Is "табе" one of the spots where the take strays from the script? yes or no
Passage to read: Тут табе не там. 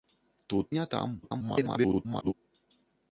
yes